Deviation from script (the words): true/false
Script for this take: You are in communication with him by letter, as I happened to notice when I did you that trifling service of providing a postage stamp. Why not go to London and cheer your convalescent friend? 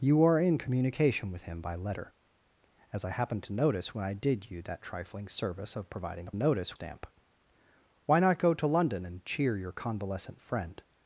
true